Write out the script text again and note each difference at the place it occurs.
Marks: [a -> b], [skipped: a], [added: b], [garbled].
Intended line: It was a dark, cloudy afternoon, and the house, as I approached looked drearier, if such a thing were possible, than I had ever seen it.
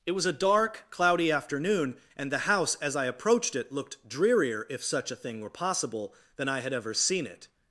It was a dark, cloudy afternoon, and the house, as I approached [added: it] looked drearier, if such a thing were possible, than I had ever seen it.